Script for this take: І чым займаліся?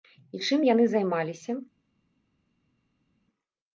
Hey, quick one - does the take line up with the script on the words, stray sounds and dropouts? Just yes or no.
no